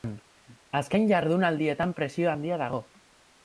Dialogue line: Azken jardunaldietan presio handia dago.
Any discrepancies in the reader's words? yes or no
no